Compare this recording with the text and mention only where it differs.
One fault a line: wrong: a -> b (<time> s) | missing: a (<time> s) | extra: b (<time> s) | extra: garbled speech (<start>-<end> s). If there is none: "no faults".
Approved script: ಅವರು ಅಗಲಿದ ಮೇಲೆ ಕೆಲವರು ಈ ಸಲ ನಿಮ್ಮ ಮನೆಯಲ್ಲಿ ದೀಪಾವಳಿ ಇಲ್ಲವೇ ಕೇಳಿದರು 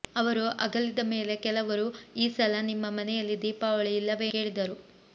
no faults